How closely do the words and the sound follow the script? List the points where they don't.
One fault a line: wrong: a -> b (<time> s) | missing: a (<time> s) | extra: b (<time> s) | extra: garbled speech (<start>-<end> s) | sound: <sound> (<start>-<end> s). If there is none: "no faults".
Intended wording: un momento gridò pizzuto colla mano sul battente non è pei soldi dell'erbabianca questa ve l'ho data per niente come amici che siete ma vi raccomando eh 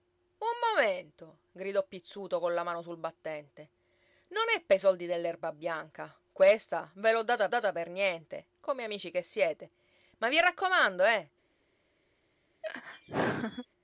extra: data (7.5 s)
sound: laugh (12.6-13.7 s)